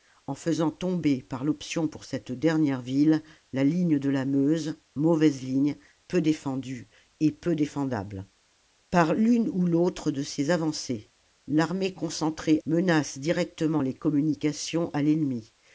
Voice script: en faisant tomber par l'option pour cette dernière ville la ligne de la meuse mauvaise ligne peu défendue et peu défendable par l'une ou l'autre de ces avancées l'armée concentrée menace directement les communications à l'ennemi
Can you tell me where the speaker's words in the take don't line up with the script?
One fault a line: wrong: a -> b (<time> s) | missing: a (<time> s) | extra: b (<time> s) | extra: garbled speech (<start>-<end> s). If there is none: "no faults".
no faults